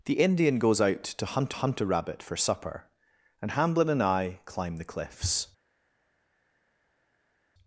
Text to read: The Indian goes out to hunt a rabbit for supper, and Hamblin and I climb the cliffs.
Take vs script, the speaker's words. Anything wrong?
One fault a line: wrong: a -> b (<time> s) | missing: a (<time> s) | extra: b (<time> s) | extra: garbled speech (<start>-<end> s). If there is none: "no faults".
extra: hunt (1.5 s)